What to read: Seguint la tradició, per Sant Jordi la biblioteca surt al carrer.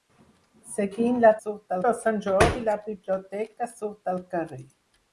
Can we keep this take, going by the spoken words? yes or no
no